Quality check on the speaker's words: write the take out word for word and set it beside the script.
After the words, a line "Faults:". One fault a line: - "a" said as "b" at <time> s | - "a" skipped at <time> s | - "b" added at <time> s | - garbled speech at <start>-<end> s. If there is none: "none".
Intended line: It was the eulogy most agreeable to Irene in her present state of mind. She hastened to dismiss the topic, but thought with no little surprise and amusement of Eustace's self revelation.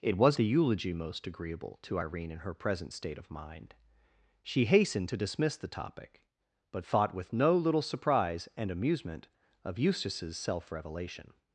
It was the eulogy most agreeable to Irene in her present state of mind. She hastened to dismiss the topic, but thought with no little surprise and amusement of Eustace's self revelation.
Faults:
none